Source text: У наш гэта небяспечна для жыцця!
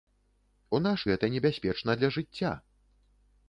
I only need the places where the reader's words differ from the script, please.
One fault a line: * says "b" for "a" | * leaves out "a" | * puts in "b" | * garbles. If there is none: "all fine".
all fine